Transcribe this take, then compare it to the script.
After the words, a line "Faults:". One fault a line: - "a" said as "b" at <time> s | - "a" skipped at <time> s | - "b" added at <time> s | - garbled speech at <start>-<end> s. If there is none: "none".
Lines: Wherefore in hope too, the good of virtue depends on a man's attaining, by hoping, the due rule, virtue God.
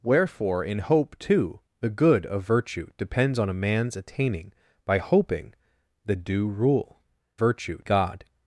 Wherefore in hope too, the good of virtue depends on a man's attaining, by hoping, the due rule, virtue God.
Faults:
none